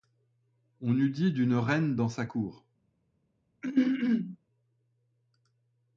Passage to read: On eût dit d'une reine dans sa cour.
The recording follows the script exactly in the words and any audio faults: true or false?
false